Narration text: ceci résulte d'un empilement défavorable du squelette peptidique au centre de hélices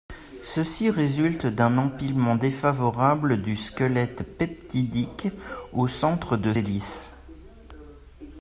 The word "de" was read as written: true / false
true